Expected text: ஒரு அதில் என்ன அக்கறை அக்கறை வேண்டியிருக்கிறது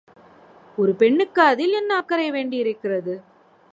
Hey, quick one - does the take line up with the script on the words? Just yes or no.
no